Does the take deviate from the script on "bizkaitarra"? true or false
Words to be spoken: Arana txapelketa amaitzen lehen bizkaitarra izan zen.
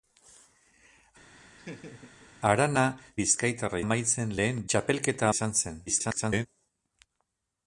true